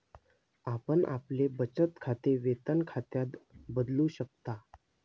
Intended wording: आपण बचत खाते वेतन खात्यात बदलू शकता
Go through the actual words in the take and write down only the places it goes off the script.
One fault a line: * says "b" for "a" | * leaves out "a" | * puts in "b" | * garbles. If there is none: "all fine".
* puts in "आपले"